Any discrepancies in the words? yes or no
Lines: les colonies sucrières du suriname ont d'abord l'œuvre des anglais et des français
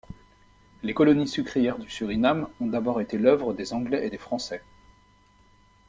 yes